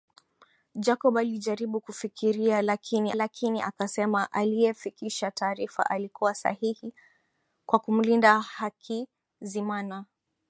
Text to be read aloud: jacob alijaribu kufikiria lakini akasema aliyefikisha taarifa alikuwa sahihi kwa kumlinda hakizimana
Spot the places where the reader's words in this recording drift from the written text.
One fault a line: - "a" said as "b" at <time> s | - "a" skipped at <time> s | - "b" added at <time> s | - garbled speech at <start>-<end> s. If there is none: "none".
- "lakini" added at 3.1 s